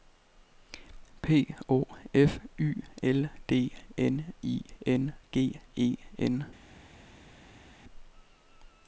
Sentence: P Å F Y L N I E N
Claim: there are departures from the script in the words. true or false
true